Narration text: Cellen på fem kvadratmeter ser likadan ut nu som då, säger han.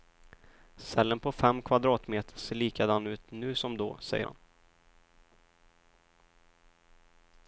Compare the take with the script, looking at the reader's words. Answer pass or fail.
pass